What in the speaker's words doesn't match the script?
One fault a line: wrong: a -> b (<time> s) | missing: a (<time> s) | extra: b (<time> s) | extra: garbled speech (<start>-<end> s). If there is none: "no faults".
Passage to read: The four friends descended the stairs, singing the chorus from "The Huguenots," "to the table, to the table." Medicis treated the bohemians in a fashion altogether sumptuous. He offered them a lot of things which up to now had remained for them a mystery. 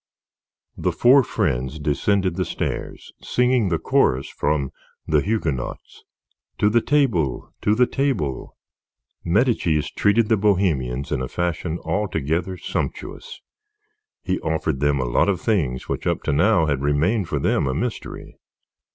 no faults